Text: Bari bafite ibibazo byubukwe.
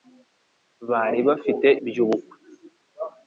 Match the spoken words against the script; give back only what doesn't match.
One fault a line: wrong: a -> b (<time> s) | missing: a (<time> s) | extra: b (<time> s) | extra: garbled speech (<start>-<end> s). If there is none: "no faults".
missing: ibibazo (1.7 s)